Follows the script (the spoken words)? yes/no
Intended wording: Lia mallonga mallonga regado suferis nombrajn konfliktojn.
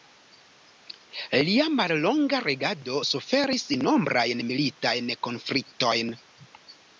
no